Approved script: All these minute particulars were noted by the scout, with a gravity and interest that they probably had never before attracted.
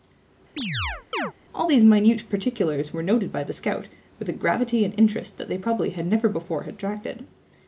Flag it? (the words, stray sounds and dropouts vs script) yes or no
yes